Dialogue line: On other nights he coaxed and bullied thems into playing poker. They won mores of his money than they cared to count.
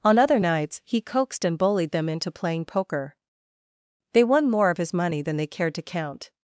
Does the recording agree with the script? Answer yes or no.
no